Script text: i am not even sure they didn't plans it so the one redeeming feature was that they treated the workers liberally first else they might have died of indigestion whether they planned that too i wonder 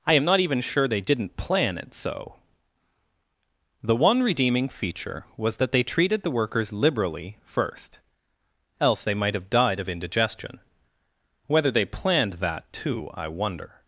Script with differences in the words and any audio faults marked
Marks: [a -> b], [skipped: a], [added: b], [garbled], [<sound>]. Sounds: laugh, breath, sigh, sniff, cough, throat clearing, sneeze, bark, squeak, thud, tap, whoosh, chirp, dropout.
i am not even sure they didn't [plans -> plan] it so the one redeeming feature was that they treated the workers liberally first else they might have died of indigestion whether they planned that too i wonder